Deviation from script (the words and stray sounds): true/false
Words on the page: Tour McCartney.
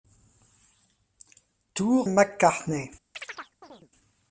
true